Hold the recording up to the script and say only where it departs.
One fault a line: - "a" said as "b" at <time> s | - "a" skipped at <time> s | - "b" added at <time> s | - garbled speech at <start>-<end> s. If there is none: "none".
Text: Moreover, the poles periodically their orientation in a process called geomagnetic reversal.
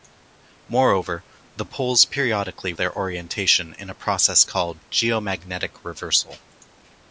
none